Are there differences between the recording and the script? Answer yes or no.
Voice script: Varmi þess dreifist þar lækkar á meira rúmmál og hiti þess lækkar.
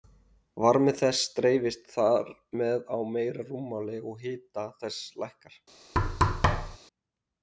yes